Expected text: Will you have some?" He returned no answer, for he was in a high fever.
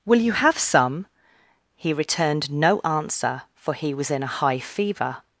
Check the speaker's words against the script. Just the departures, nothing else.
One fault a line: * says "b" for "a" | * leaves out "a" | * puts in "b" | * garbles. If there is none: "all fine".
all fine